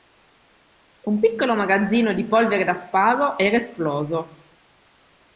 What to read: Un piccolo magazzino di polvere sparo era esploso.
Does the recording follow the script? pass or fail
fail